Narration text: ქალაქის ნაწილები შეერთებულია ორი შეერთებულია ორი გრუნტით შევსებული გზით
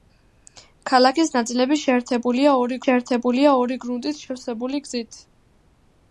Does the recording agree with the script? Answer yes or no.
yes